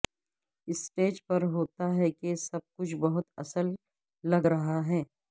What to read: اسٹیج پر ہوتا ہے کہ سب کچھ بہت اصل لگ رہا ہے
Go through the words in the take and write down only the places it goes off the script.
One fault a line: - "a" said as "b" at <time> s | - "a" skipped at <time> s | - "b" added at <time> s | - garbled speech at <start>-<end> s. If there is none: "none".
none